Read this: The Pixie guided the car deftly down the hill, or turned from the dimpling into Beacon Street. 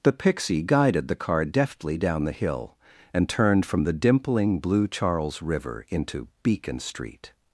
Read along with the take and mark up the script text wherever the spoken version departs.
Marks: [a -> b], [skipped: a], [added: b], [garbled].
The Pixie guided the car deftly down the hill, [or -> and] turned from the dimpling [added: blue Charles River] into Beacon Street.